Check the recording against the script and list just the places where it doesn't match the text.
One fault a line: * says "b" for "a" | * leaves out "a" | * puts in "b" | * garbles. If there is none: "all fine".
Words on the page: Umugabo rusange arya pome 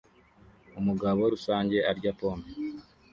all fine